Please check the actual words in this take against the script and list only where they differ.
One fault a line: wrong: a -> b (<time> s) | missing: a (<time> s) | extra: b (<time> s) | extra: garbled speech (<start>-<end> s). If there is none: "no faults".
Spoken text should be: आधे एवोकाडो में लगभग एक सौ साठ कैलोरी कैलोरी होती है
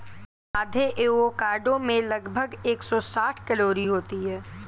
missing: कैलोरी (3.9 s)